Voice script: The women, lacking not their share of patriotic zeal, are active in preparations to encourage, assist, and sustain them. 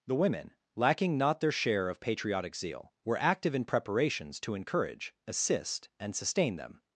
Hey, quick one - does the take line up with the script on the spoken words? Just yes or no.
no